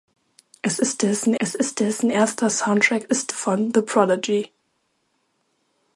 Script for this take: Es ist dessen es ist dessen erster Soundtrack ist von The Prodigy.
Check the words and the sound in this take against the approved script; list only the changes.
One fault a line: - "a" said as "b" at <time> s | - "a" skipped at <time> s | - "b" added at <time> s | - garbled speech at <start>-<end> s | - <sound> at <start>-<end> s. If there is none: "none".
none